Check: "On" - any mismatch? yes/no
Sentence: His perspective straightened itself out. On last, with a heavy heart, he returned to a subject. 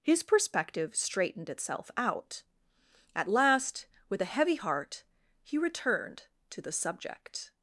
yes